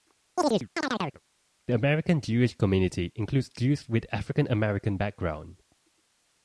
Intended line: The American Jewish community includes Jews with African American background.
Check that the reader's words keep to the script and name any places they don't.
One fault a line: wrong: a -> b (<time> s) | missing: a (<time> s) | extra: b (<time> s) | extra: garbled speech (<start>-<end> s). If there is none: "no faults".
no faults